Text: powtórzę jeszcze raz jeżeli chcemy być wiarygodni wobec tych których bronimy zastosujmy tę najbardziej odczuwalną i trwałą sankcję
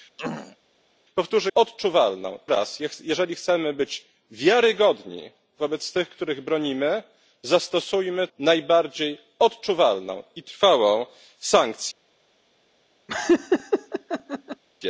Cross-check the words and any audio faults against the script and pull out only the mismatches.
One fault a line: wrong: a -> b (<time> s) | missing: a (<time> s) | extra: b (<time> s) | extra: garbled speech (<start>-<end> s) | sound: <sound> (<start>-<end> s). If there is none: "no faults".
sound: throat clearing (0.2-0.6 s)
wrong: jeszcze -> odczuwalną (1.5 s)
missing: tę (8.3 s)
sound: laugh (13.1-14.6 s)